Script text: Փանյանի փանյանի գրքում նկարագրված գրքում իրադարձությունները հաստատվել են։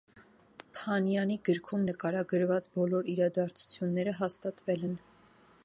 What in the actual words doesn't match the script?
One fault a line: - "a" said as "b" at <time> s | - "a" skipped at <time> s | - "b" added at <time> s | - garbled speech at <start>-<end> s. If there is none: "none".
- "փանյանի" skipped at 1.4 s
- "գրքում" said as "բոլոր" at 2.8 s